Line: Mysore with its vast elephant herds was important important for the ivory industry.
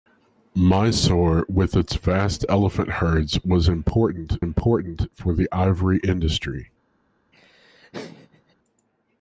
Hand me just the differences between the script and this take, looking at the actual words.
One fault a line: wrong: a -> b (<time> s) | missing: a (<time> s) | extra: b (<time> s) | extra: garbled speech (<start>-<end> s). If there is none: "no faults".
no faults